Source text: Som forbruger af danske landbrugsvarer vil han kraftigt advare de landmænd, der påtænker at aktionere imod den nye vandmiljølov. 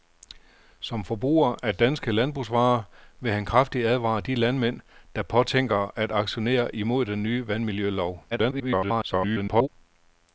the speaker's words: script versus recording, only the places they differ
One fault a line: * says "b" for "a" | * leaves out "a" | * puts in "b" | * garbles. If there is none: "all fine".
* garbles